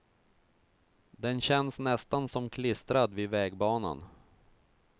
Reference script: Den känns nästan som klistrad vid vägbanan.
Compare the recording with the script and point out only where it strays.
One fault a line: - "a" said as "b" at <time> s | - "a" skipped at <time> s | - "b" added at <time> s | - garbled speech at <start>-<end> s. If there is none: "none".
none